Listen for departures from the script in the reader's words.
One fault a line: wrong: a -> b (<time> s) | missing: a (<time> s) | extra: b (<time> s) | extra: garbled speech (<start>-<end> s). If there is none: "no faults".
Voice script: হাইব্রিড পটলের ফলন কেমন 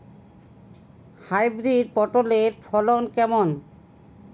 no faults